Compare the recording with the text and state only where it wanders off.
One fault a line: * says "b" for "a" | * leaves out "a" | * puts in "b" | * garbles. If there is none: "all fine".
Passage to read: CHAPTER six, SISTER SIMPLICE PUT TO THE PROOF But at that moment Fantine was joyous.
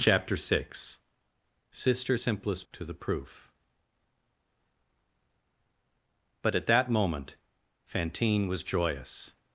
* leaves out "PUT"